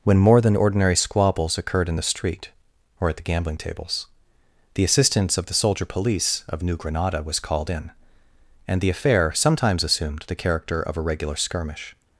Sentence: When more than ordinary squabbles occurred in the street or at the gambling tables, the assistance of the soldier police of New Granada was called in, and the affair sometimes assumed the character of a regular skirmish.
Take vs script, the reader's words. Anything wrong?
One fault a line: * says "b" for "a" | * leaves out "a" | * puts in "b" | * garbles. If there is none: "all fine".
all fine